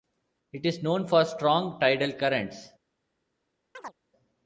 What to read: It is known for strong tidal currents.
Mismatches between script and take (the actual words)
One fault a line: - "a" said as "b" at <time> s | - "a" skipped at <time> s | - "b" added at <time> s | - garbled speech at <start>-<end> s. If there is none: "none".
none